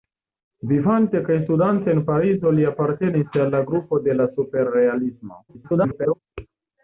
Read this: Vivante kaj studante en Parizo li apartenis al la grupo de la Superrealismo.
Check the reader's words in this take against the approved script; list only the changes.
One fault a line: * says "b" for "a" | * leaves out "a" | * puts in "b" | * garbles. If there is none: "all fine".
* garbles